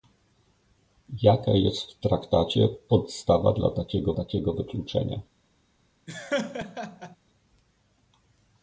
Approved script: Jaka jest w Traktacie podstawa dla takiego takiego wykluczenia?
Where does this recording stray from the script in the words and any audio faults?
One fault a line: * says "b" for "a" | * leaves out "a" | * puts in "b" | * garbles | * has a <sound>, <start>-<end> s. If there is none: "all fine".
* has a laugh, 6.1-7.2 s